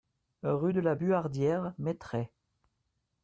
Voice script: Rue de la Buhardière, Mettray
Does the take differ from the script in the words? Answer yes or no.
no